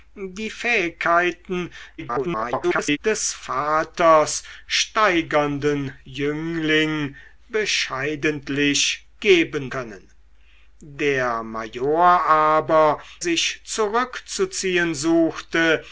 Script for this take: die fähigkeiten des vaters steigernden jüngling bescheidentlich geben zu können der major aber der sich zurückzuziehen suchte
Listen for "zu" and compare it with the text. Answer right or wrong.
wrong